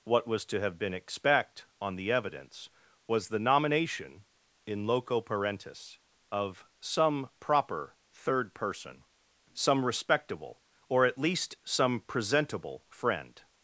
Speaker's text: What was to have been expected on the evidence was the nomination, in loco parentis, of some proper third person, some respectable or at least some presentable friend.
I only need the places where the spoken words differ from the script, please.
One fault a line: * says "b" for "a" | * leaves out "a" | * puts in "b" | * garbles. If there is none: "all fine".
* says "expect" for "expected"